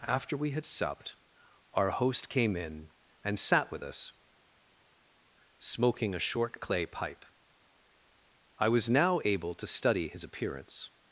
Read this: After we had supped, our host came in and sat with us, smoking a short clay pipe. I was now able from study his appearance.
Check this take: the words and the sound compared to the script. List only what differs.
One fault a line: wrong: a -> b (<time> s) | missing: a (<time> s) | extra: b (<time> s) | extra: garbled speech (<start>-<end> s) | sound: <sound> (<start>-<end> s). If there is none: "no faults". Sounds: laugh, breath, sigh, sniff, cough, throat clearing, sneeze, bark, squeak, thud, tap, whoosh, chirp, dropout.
wrong: from -> to (9.5 s)